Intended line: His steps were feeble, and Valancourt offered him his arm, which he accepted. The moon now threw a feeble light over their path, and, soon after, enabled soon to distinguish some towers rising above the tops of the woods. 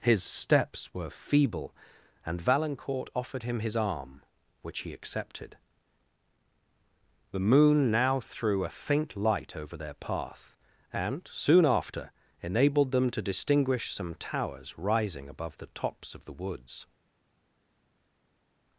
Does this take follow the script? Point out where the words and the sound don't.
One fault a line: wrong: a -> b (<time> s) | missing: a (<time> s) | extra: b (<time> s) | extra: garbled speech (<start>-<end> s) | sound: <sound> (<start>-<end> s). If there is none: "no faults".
wrong: feeble -> faint (8.7 s)
wrong: soon -> them (12.9 s)